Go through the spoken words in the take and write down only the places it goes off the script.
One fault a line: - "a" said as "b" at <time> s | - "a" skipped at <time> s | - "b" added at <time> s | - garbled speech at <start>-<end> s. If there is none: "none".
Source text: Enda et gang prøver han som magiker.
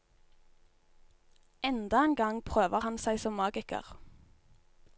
- "et" said as "en" at 2.0 s
- "seg" added at 3.0 s